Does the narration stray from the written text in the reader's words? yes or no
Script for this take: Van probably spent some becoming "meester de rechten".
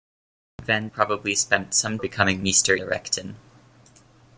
no